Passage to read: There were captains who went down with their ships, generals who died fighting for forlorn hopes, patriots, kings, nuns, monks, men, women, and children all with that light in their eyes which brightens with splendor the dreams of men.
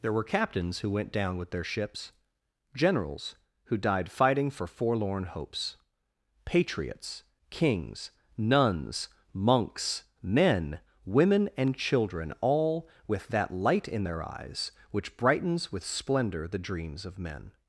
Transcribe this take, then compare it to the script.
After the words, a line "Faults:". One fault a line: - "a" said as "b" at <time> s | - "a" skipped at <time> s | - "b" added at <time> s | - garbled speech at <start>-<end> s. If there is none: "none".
There were captains who went down with their ships, generals who died fighting for forlorn hopes, patriots, kings, nuns, monks, men, women, and children all with that light in their eyes which brightens with splendor the dreams of men.
Faults:
none